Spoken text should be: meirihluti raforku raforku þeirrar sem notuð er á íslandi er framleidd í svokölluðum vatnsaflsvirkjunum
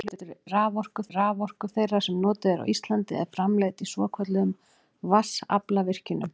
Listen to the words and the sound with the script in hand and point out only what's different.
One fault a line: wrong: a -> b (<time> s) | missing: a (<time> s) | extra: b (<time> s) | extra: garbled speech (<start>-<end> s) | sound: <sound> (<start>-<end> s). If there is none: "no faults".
no faults